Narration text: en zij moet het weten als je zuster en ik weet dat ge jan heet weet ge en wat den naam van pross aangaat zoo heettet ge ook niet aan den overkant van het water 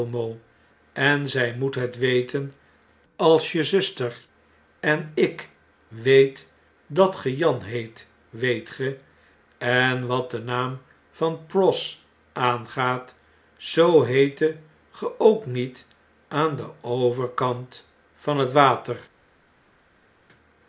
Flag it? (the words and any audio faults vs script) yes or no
no